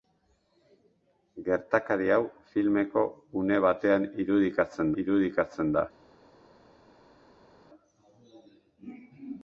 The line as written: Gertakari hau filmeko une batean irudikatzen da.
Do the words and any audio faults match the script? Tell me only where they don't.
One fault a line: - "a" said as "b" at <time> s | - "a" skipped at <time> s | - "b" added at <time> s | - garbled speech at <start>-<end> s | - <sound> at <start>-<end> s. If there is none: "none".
- "irudikatzen" added at 5.0 s